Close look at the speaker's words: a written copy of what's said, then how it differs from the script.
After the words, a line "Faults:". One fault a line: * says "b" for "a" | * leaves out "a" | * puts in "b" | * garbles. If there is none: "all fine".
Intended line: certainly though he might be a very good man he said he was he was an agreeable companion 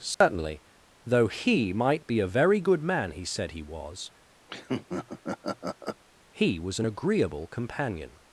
certainly though he might be a very good man he said he was he was an agreeable companion
Faults:
all fine